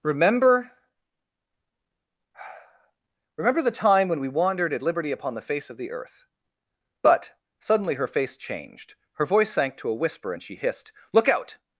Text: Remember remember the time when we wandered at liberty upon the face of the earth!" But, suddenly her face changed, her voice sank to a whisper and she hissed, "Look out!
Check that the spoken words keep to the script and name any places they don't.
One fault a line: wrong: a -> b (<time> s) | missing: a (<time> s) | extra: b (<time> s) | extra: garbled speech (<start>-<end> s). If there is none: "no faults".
no faults